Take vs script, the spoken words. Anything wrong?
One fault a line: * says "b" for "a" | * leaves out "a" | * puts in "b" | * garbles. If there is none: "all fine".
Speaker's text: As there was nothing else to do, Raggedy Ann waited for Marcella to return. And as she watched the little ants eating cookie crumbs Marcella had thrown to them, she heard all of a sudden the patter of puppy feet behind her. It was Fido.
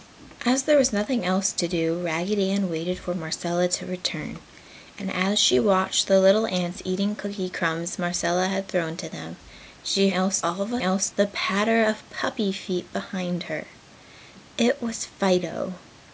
* says "else" for "heard"
* says "else" for "sudden"